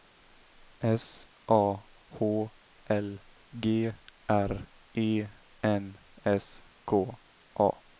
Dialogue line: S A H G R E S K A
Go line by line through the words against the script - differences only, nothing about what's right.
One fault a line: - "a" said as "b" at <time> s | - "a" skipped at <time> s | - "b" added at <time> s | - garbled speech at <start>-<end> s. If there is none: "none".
- "L" added at 2.9 s
- "N" added at 5.6 s